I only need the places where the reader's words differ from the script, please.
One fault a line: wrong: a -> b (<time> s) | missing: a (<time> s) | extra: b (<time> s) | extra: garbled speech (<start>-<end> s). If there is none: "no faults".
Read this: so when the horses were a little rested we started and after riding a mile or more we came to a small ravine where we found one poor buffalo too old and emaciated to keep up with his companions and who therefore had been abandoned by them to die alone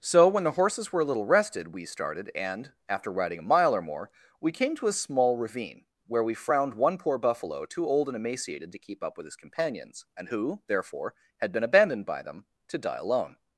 wrong: found -> frowned (6.3 s)